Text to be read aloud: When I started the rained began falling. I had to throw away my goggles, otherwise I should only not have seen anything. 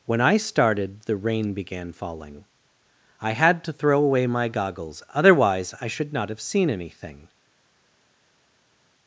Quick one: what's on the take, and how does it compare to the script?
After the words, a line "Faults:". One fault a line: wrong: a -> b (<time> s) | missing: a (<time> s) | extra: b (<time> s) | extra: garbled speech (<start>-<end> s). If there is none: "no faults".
When I started the rain began falling. I had to throw away my goggles, otherwise I should not have seen anything.
Faults:
wrong: rained -> rain (1.1 s)
missing: only (6.1 s)